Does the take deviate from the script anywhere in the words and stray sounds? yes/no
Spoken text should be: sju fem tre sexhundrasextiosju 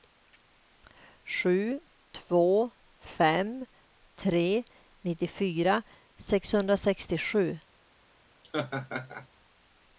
yes